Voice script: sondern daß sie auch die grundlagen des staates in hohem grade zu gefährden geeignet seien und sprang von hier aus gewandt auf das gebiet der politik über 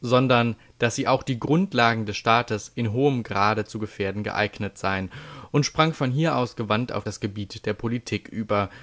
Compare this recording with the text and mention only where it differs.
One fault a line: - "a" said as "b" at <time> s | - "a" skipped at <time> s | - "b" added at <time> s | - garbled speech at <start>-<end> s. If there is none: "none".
none